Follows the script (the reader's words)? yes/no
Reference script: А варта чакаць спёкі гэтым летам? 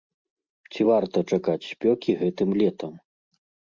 no